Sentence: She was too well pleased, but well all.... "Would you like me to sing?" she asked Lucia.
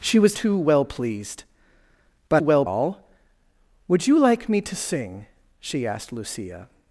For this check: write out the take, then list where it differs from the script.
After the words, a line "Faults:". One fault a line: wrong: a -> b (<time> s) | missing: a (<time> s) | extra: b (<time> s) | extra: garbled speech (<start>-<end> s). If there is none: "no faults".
She was too well pleased, but well all.... "Would you like me to sing?" she asked Lucia.
Faults:
no faults